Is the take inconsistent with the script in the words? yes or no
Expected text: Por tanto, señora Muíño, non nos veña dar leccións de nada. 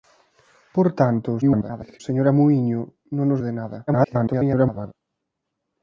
yes